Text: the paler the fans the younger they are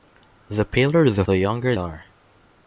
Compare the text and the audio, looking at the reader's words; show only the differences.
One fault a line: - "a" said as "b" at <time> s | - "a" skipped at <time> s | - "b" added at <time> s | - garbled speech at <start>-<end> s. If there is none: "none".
- "fans" skipped at 1.2 s
- "they" skipped at 1.7 s